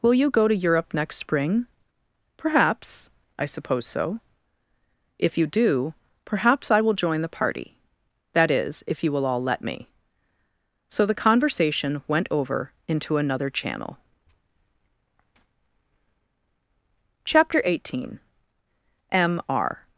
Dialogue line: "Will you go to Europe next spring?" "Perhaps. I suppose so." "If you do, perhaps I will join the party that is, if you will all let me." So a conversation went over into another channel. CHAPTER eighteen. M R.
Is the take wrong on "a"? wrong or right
wrong